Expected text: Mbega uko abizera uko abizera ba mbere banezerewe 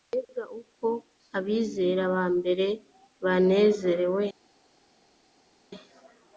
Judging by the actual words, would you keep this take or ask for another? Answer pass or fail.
fail